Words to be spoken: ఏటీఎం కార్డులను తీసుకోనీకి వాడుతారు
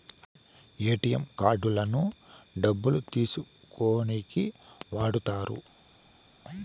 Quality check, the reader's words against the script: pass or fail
fail